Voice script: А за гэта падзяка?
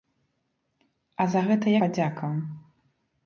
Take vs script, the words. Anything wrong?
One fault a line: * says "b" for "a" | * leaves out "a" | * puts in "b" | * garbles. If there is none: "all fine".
all fine